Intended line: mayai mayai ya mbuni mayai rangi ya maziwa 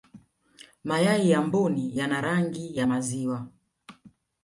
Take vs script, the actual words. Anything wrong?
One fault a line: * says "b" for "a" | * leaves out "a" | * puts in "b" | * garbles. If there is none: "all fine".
* leaves out "mayai"
* says "yana" for "mayai"